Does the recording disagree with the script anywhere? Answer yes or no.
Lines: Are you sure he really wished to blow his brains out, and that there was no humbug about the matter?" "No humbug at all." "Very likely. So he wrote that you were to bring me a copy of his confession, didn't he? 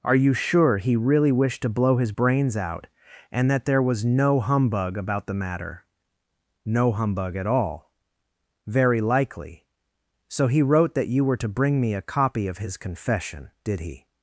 yes